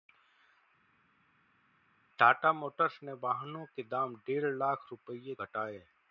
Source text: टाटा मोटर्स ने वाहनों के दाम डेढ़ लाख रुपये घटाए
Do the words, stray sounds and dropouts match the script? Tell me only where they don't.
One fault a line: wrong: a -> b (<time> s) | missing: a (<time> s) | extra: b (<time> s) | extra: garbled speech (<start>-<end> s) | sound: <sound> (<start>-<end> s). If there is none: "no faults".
no faults